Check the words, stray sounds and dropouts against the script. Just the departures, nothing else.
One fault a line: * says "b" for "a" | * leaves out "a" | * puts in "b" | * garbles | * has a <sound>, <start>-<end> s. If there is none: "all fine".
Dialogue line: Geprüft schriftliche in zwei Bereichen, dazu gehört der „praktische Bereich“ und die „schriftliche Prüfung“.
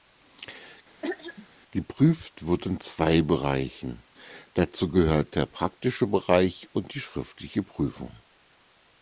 * has a throat clearing, 1.0-1.5 s
* says "wird" for "schriftliche"